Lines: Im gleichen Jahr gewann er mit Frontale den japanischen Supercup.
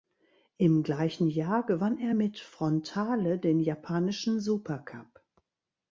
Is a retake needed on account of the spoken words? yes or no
no